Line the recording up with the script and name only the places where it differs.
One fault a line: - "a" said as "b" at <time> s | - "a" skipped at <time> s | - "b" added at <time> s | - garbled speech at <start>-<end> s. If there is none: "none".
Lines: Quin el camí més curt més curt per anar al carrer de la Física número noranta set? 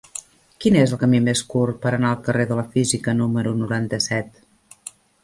- "és" added at 0.8 s
- "més curt" skipped at 1.8 s